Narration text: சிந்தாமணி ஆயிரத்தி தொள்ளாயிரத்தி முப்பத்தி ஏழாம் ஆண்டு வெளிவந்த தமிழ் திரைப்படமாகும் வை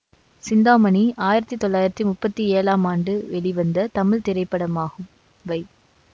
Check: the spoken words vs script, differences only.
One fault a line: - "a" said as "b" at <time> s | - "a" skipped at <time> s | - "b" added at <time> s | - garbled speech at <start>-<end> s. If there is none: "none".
none